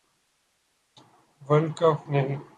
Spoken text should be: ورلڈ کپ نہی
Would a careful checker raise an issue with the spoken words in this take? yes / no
no